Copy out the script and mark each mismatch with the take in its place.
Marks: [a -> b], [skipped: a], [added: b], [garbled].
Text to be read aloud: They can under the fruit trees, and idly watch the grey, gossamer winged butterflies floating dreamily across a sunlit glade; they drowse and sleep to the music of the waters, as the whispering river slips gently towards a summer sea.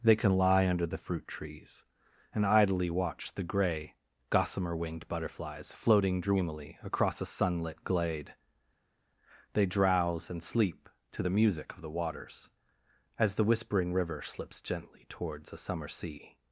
They can [added: lie] under the fruit trees, and idly watch the grey, gossamer winged butterflies floating dreamily across a sunlit glade; they drowse and sleep to the music of the waters, as the whispering river slips gently towards a summer sea.